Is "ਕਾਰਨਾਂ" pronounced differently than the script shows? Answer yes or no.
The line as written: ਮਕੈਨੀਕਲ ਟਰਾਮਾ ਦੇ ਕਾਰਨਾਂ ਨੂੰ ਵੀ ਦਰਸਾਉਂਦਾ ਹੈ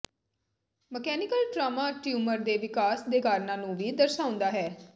no